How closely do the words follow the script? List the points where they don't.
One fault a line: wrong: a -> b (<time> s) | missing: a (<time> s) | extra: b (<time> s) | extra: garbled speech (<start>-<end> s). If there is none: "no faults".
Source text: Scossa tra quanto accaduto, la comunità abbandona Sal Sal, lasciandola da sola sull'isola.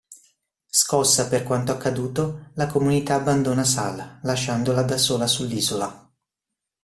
wrong: tra -> per (1.3 s)
missing: Sal (4.2 s)